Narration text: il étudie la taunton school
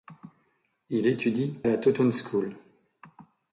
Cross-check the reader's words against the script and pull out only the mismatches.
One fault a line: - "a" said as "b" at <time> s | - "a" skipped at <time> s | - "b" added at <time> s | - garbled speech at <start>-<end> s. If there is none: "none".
none